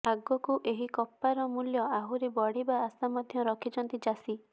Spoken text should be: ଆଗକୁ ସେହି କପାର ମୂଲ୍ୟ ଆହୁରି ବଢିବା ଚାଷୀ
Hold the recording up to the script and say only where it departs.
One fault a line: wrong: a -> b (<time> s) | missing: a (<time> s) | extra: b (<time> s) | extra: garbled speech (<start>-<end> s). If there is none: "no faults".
wrong: ସେହି -> ଏହି (0.7 s)
extra: ଆଶା ମଧ୍ୟ ରଖିଛନ୍ତି (2.8 s)